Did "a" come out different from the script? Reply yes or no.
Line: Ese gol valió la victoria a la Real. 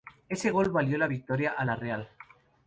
no